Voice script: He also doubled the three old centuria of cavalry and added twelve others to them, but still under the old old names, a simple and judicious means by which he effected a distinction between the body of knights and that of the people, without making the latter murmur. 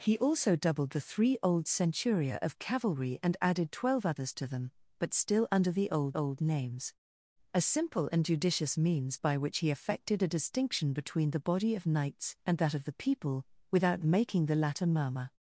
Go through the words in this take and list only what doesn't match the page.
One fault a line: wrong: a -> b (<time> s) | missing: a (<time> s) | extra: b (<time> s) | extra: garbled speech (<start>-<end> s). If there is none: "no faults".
no faults